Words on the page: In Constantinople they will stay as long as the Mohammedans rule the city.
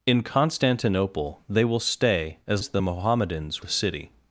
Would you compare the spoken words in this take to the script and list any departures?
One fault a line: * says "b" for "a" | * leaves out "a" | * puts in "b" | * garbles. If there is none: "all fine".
* leaves out "long"
* leaves out "rule"